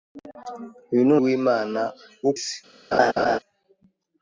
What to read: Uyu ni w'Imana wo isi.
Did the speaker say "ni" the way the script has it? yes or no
yes